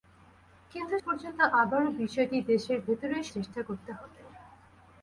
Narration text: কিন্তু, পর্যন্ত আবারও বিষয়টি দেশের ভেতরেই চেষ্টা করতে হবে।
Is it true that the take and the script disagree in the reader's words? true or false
false